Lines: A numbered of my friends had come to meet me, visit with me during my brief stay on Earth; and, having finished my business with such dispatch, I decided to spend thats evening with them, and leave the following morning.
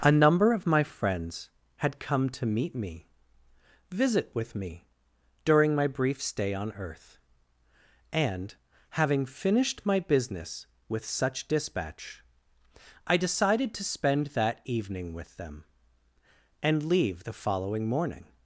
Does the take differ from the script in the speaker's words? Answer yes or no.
yes